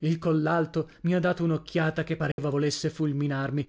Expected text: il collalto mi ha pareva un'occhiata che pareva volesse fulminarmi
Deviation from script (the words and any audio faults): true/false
true